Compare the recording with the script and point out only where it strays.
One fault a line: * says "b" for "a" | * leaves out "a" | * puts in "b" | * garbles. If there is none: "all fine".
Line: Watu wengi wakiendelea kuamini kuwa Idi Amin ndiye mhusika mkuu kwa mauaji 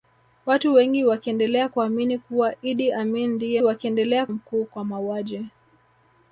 * says "wakiendelea" for "mhusika"